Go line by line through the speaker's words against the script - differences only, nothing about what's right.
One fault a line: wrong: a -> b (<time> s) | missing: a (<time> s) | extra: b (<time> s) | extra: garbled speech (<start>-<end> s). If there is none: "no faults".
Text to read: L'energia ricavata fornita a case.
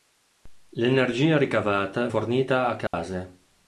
no faults